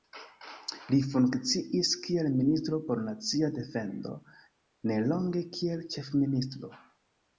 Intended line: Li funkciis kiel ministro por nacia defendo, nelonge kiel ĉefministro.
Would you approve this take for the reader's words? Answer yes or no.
yes